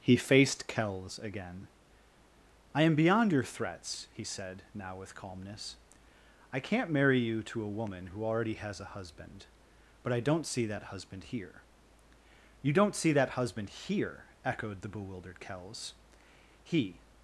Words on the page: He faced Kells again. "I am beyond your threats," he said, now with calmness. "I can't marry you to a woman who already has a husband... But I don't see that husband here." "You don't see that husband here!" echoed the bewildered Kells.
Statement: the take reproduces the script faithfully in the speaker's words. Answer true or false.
false